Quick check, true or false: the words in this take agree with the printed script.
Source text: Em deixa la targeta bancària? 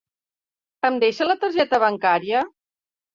true